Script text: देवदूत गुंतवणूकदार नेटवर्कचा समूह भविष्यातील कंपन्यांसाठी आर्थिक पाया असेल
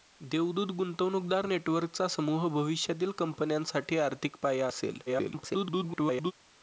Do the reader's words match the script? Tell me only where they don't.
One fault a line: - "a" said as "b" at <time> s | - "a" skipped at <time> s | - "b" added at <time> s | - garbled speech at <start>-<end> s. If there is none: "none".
- garbled speech at 5.1-6.3 s